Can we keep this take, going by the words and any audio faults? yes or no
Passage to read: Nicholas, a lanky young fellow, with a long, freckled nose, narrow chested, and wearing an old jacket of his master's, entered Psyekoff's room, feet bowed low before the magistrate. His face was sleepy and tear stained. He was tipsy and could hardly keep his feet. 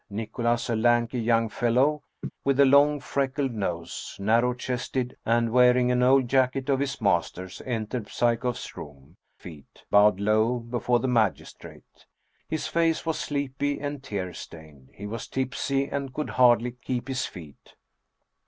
no